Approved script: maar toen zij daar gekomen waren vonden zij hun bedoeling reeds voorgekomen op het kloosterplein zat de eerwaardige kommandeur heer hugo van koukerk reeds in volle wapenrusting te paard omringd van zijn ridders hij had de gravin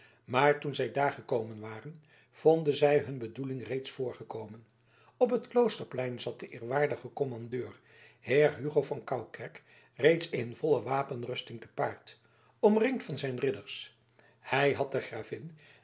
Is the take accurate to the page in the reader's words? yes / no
yes